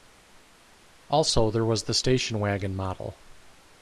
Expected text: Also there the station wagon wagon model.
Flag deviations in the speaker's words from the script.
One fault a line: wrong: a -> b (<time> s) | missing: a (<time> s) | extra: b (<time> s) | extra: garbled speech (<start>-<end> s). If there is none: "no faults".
extra: was (1.6 s)
missing: wagon (2.8 s)